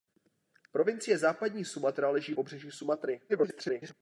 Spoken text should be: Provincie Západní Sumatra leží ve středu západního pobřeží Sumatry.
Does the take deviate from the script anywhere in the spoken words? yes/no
yes